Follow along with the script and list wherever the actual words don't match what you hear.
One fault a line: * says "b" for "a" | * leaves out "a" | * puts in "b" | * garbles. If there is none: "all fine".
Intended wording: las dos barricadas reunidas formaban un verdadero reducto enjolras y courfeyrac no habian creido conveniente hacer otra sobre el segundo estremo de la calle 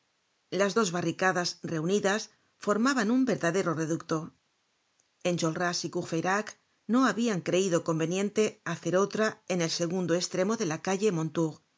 * says "en" for "sobre"